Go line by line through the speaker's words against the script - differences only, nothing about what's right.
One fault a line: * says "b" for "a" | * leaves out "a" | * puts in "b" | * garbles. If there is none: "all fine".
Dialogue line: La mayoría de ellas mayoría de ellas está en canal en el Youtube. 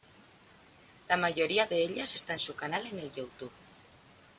* leaves out "mayoría de ellas"
* puts in "su"